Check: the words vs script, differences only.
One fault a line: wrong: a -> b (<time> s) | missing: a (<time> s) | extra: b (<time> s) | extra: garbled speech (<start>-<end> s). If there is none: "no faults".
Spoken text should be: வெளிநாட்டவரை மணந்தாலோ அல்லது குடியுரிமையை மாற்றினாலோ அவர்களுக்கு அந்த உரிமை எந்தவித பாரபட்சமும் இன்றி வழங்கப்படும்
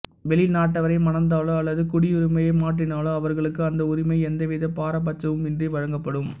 no faults